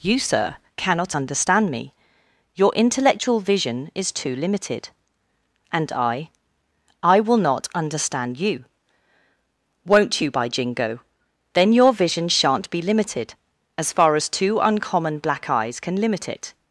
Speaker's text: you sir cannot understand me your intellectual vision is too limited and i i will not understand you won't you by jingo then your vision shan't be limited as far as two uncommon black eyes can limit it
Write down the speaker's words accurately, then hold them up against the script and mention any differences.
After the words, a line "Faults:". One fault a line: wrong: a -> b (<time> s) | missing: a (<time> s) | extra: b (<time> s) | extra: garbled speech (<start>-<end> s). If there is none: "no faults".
you sir cannot understand me your intellectual vision is too limited and i i will not understand you won't you by jingo then your vision shan't be limited as far as two uncommon black eyes can limit it
Faults:
no faults